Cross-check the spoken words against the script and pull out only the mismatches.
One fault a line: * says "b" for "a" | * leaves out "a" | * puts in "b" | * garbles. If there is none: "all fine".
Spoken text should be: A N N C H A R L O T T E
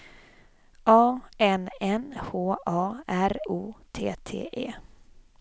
* leaves out "C"
* leaves out "L"